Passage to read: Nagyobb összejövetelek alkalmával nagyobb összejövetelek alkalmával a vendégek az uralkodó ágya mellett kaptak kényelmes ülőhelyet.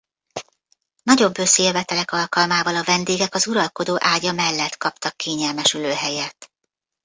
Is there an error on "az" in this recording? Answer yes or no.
no